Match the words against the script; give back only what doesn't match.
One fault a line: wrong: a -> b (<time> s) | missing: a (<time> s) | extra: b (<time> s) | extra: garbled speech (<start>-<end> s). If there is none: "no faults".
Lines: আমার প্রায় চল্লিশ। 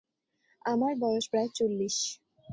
extra: বয়স (1.0 s)